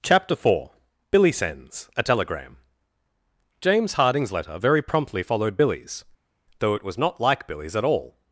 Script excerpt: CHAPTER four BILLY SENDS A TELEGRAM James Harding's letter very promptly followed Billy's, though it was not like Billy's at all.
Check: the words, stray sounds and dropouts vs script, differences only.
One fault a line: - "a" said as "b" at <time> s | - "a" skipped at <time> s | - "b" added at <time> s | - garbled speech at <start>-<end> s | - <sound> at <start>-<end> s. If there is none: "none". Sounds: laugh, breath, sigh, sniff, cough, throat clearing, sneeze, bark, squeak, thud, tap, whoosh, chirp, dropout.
none